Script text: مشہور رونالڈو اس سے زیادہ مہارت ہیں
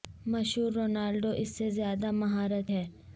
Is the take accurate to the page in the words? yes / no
yes